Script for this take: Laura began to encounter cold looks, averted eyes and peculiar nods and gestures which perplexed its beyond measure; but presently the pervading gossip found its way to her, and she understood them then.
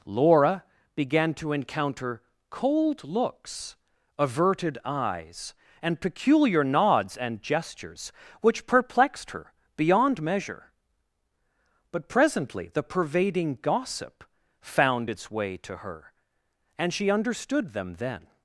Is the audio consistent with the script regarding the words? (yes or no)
no